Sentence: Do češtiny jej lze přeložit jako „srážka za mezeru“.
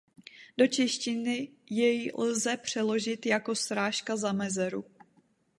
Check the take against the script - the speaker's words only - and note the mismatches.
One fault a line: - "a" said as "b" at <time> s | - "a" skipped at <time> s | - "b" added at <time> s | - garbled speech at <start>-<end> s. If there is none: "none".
none